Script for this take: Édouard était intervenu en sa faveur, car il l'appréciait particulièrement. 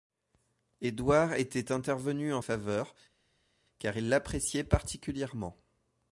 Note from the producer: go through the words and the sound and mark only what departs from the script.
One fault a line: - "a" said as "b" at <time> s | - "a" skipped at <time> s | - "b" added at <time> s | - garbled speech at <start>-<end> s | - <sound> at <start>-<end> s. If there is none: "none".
- "sa" skipped at 2.4 s